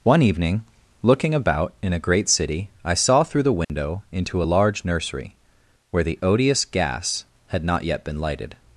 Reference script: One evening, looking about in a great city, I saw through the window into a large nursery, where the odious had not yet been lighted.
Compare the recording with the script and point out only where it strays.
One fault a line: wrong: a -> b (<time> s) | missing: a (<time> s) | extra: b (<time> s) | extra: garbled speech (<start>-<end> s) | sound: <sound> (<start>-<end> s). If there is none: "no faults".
sound: dropout (3.6-3.7 s)
extra: gas (6.7 s)